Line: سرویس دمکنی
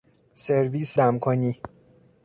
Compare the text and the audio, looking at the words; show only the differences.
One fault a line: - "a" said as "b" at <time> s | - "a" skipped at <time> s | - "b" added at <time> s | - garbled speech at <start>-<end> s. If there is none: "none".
none